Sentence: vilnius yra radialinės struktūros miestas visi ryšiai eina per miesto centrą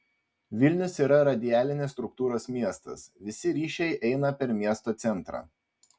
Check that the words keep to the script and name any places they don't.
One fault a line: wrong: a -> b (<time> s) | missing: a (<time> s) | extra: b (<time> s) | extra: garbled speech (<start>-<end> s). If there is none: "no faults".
no faults